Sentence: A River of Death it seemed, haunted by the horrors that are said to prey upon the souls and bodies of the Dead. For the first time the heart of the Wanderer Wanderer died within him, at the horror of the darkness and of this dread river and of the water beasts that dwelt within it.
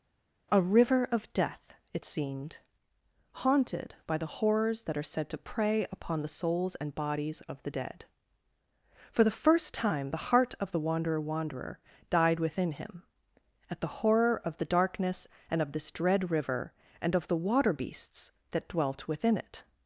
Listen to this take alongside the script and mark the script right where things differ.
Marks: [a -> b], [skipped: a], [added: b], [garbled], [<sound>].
A River of Death it seemed, haunted by the horrors that are said to prey upon the souls and bodies of the Dead. For the first time the heart of the Wanderer Wanderer died within him, at the horror of the darkness and of this dread river and of the water beasts that dwelt within it.